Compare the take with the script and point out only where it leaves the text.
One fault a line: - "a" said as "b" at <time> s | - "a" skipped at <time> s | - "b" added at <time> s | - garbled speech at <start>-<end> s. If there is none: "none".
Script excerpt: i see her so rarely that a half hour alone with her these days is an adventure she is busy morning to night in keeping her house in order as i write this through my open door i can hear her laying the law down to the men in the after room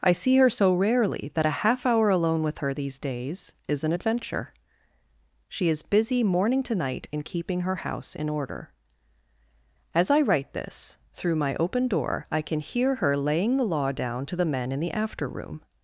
none